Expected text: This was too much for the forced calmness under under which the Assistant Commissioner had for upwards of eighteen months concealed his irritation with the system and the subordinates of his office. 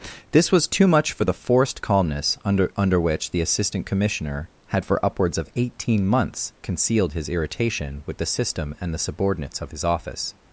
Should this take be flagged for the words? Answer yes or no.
no